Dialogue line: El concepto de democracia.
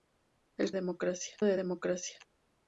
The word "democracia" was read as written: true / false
true